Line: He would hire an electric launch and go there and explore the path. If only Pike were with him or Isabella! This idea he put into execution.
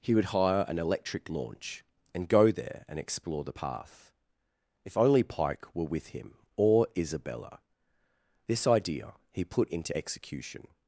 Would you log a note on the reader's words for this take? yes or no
no